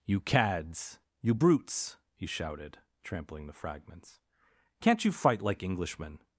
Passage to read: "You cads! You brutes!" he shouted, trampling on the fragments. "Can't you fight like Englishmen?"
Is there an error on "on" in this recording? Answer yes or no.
yes